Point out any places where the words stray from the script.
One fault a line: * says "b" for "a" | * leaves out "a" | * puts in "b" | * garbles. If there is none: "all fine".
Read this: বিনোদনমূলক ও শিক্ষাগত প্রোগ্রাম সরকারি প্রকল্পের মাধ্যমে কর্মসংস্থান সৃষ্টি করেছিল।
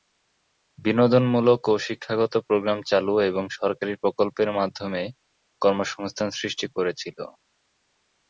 * puts in "চালু এবং"